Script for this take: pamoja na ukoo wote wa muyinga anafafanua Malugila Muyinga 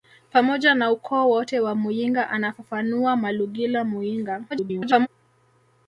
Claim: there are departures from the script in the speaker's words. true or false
true